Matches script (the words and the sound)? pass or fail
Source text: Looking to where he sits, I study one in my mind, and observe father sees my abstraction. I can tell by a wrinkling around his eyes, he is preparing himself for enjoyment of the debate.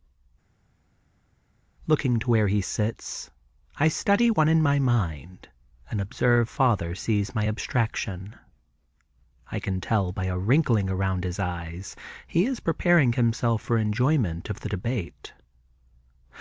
pass